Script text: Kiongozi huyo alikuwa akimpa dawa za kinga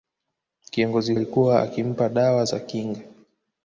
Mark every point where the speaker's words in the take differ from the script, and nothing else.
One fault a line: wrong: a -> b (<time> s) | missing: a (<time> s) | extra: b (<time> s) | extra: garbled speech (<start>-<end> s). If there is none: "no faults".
missing: huyo (1.1 s)